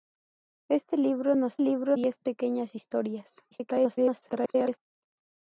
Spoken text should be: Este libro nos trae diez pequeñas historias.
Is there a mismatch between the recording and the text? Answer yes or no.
yes